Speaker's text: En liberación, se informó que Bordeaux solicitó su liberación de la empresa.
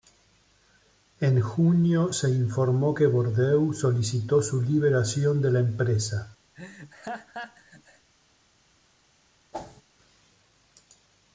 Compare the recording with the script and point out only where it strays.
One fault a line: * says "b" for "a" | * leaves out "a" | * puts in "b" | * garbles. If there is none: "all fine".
* says "junio" for "liberación"